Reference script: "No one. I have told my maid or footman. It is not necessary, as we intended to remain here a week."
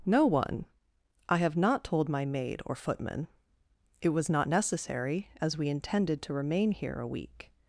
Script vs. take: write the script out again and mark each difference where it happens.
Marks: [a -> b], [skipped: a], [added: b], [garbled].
"No one. I have [added: not] told my maid or footman. It [is -> was] not necessary, as we intended to remain here a week."